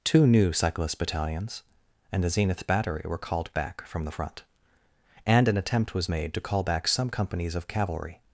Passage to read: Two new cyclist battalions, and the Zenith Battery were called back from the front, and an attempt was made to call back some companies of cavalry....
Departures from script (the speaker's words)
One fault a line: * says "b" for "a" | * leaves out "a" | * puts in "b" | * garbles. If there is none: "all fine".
all fine